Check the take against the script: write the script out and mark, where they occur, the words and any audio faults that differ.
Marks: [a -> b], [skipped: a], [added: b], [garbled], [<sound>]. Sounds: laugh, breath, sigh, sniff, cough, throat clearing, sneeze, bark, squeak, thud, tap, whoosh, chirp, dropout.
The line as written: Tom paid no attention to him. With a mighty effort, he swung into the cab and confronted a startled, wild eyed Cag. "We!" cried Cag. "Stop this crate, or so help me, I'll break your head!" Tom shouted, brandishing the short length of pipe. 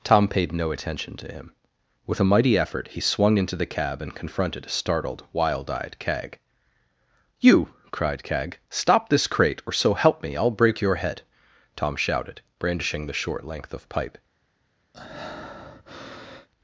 Tom paid no attention to him. With a mighty effort, he swung into the cab and confronted a startled, wild eyed Cag. ["We!" -> You] cried Cag. "Stop this crate, or so help me, I'll break your head!" Tom shouted, brandishing the short length of pipe. [breath]